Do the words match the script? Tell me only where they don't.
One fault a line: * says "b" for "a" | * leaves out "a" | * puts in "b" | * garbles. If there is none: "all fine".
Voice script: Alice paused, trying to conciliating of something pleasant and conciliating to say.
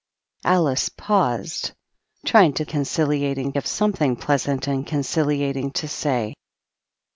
all fine